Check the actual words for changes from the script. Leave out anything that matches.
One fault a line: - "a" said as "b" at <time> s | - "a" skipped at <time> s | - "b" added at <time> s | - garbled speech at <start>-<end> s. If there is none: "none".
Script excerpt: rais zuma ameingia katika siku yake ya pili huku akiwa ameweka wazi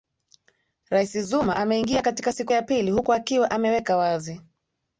- "yake" skipped at 2.5 s